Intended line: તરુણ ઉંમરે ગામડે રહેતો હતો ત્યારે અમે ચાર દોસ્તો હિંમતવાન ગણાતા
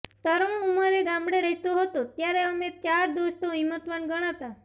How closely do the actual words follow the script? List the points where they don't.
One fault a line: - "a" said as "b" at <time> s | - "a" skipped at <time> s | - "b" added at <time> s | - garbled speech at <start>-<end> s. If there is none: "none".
none